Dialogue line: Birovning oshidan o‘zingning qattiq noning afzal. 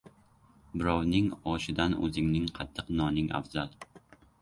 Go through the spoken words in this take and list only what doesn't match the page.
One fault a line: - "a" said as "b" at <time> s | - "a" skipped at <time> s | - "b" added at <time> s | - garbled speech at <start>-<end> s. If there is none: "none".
none